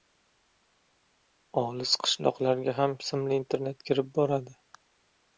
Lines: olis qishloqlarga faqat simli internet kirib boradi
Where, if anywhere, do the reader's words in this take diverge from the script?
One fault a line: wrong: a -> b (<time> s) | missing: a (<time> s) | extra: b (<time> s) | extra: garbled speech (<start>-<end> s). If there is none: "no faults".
wrong: faqat -> ham (2.8 s)